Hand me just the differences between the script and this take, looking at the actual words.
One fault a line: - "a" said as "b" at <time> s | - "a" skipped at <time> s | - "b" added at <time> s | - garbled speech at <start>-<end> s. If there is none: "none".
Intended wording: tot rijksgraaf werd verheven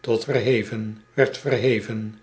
- "rijksgraaf" said as "verheven" at 0.2 s